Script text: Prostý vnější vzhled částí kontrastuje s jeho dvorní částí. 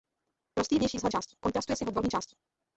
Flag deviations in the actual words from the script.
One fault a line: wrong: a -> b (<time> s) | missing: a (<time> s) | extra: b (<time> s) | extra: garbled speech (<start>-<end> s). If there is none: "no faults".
no faults